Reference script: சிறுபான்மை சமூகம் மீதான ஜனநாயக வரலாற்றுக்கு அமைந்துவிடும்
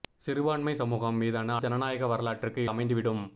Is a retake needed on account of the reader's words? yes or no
no